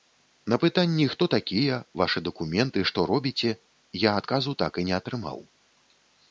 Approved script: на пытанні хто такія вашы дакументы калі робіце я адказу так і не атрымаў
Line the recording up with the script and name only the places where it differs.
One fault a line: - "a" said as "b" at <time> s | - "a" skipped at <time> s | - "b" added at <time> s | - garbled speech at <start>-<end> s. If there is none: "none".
- "калі" said as "што" at 2.9 s